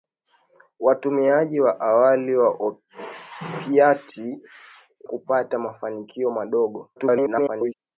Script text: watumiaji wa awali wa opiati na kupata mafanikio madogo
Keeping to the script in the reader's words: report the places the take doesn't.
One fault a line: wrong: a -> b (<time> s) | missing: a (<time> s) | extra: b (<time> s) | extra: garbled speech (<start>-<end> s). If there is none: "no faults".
missing: na (4.4 s)
extra: garbled speech (6.9-7.7 s)